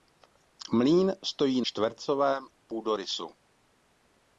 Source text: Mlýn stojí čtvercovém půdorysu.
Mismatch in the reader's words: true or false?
false